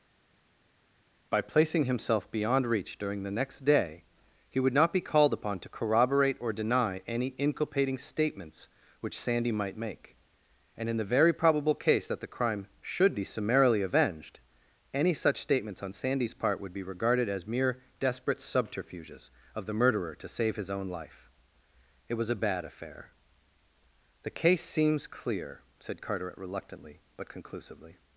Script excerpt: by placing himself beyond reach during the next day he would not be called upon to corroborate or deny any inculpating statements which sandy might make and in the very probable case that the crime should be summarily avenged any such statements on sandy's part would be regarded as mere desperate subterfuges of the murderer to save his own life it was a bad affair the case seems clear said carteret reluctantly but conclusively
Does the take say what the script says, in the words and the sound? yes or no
yes